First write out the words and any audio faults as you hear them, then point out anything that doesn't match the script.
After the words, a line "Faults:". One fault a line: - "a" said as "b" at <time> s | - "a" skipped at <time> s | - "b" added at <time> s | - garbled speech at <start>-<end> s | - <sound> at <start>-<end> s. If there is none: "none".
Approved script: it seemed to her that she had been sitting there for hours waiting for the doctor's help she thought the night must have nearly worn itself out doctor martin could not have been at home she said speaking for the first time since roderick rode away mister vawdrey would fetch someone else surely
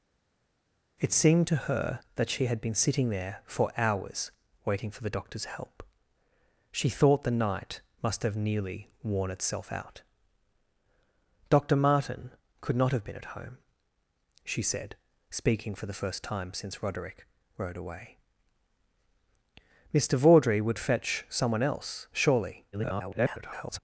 it seemed to her that she had been sitting there for hours waiting for the doctor's help she thought the night must have nearly worn itself out doctor martin could not have been at home she said speaking for the first time since roderick rode away mister vawdrey would fetch someone else surely [garbled]
Faults:
- garbled speech at 22.7-23.8 s